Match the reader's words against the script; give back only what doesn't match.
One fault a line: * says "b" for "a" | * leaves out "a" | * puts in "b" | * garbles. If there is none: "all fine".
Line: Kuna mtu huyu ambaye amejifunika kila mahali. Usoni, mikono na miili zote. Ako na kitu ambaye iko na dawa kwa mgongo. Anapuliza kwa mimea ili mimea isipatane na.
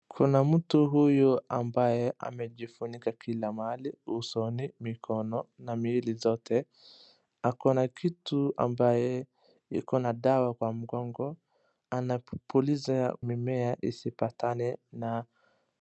* leaves out "kwa mimea ili"